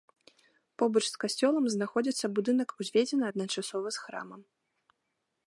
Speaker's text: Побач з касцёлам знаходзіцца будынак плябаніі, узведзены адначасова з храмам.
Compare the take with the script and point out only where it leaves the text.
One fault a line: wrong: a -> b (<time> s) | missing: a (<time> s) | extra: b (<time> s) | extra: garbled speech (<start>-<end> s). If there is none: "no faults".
missing: плябаніі (2.7 s)